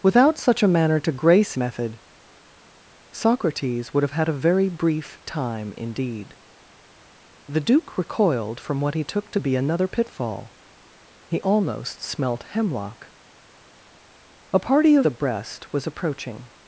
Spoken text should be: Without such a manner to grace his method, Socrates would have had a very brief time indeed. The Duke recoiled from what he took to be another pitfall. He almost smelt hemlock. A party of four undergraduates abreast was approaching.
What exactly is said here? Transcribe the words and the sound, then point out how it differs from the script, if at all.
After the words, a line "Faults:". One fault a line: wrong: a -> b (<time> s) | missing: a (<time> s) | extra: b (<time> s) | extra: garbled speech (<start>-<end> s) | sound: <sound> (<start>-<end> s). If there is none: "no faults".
Without such a manner to grace method, Socrates would have had a very brief time indeed. The Duke recoiled from what he took to be another pitfall. He almost smelt hemlock. A party of abreast was approaching.
Faults:
missing: his (1.5 s)
missing: four undergraduates (15.1 s)